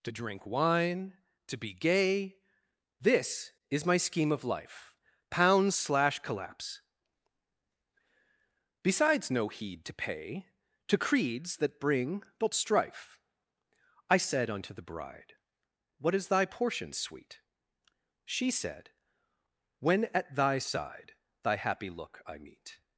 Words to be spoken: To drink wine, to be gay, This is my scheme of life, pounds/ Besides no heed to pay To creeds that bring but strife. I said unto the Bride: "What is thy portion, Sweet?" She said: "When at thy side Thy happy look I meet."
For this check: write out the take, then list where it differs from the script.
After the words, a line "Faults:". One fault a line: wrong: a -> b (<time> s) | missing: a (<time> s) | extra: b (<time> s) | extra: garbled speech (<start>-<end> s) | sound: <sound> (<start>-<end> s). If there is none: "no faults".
To drink wine, to be gay, This is my scheme of life, pounds/ slash collapse Besides no heed to pay To creeds that bring but strife. I said unto the Bride: "What is thy portion, Sweet?" She said: "When at thy side Thy happy look I meet."
Faults:
extra: slash collapse (5.8 s)